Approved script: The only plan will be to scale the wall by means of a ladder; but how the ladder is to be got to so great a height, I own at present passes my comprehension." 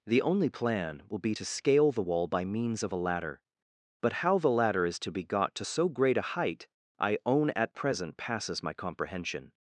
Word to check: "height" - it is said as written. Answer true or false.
true